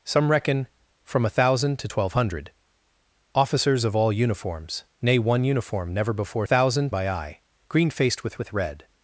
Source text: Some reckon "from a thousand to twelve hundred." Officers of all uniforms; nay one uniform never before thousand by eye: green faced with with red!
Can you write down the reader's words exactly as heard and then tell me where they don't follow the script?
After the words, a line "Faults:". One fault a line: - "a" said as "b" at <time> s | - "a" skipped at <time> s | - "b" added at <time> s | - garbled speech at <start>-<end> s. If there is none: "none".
Some reckon "from a thousand to twelve hundred." Officers of all uniforms; nay one uniform never before thousand by eye: green faced with with red!
Faults:
none